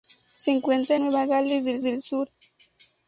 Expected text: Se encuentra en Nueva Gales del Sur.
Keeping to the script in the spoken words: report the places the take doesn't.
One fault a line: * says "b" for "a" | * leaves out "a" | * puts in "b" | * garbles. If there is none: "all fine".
* leaves out "en"
* puts in "del"